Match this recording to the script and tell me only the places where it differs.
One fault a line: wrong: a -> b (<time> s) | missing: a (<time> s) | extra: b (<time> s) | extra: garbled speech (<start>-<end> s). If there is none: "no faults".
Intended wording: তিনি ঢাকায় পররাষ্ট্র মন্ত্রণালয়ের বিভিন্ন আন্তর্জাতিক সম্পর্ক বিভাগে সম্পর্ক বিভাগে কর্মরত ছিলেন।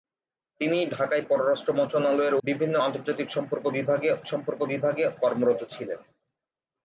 no faults